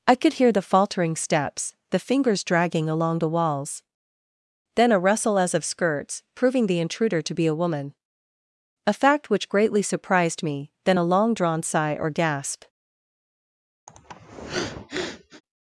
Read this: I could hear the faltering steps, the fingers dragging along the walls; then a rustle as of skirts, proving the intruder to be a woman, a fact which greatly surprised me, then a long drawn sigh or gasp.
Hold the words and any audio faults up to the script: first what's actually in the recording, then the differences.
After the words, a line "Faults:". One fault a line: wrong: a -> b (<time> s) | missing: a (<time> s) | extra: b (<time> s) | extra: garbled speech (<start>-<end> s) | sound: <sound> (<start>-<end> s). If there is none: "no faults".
I could hear the faltering steps, the fingers dragging along the walls; then a rustle as of skirts, proving the intruder to be a woman, a fact which greatly surprised me, then a long drawn sigh or gasp.
Faults:
sound: sniff (13.9-15.4 s)